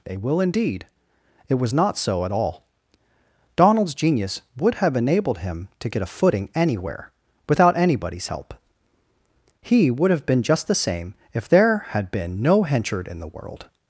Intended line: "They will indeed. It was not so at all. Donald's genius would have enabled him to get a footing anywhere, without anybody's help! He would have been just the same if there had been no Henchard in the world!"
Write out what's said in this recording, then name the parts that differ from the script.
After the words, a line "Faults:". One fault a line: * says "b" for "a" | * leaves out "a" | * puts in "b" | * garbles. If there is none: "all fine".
"They will indeed. It was not so at all. Donald's genius would have enabled him to get a footing anywhere, without anybody's help! He would have been just the same if there had been no Henchard in the world!"
Faults:
all fine